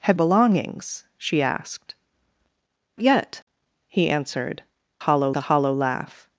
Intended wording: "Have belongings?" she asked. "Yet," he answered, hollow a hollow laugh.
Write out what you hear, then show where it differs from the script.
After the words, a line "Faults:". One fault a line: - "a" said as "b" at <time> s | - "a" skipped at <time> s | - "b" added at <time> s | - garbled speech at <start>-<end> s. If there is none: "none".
"Have belongings?" she asked. "Yet," he answered, hollow a hollow laugh.
Faults:
none